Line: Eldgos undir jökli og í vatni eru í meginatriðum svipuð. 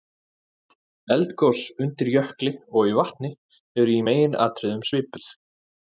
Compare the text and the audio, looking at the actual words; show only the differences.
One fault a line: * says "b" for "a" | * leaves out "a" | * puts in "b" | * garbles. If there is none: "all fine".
all fine